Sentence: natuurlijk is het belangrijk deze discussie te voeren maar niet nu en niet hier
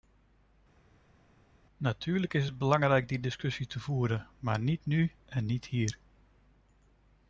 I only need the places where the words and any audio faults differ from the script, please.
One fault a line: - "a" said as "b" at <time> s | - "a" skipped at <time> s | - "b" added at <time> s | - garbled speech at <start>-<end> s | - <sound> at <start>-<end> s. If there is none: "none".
- "deze" said as "die" at 3.1 s